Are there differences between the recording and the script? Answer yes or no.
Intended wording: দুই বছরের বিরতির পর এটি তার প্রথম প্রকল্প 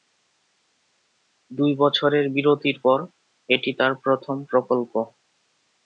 no